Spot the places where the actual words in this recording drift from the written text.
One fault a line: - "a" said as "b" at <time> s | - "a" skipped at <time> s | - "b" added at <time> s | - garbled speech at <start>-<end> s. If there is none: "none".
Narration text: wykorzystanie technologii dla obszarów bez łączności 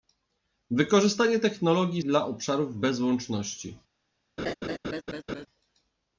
none